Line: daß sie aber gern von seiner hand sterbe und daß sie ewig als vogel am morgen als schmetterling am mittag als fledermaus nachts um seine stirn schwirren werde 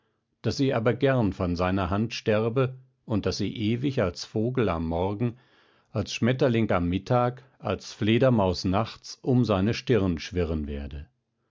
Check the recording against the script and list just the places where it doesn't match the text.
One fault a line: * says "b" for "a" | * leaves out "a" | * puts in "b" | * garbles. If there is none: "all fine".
all fine